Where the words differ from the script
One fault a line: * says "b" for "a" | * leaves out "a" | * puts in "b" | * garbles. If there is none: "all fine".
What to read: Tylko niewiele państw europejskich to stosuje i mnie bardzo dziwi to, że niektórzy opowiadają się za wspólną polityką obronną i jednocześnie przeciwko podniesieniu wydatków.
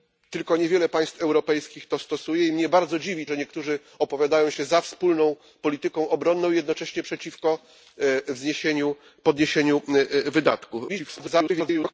* leaves out "to"
* garbles